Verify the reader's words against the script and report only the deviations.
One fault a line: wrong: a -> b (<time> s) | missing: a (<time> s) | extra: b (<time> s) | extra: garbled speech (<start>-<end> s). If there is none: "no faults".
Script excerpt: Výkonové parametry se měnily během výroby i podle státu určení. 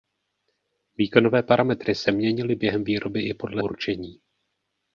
missing: státu (3.6 s)